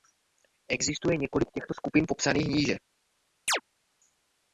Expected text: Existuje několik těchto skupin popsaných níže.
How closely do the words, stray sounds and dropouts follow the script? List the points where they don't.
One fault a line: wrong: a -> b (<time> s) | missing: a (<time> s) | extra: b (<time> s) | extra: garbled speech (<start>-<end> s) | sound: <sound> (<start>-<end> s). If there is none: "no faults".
sound: chirp (3.5-3.6 s)